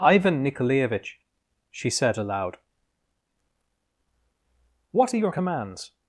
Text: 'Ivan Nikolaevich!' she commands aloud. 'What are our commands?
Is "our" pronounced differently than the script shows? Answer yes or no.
yes